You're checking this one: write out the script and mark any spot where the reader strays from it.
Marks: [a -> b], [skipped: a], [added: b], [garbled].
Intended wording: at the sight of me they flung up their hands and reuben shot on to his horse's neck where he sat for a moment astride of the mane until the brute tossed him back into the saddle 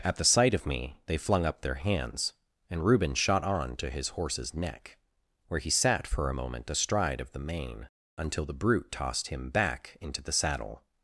at the sight of me they flung up their hands and reuben shot on to his horse's neck where he sat for a moment astride of the mane until the brute tossed him back into the saddle